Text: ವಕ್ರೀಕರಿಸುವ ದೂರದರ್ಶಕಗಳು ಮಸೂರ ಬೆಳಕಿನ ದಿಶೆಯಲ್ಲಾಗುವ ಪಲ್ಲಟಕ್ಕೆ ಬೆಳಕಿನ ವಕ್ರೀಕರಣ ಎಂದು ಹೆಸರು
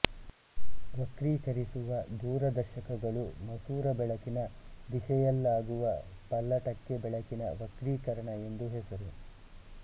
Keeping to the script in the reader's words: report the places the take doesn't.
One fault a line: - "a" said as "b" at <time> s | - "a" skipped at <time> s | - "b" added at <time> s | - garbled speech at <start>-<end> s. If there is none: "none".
none